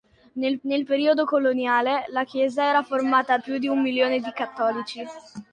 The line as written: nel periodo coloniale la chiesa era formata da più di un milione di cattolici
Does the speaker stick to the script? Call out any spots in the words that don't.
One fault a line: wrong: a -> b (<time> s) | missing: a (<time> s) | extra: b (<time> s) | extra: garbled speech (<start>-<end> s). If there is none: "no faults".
extra: nel (0.6 s)
missing: da (3.4 s)